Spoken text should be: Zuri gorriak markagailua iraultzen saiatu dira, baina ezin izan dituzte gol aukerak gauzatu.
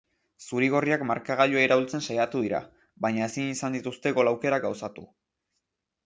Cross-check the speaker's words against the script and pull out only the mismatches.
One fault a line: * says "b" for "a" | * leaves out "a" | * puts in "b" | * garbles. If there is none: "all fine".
all fine